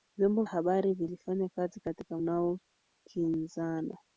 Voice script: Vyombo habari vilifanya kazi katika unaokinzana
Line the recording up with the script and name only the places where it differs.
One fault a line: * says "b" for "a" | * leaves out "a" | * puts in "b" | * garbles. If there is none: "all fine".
all fine